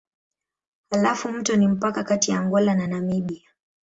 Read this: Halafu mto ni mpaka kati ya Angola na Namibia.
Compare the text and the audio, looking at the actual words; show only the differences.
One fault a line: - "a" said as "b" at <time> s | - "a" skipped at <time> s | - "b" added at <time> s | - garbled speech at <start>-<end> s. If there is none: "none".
none